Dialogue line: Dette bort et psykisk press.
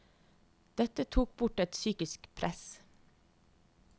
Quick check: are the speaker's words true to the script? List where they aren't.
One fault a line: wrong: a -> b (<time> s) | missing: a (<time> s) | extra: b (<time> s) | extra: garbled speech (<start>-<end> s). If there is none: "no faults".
extra: tok (1.1 s)